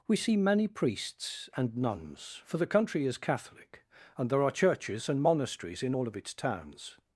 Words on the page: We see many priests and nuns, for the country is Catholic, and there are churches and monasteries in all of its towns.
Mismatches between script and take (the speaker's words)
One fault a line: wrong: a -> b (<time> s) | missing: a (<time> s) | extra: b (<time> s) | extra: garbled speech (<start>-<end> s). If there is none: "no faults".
no faults